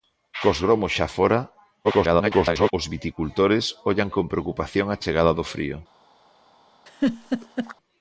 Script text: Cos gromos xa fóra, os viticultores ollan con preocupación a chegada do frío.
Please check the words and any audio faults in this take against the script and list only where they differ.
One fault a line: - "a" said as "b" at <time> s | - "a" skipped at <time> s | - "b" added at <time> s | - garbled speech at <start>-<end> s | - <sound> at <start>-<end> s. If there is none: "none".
- garbled speech at 1.8-2.7 s
- laugh at 6.9-7.7 s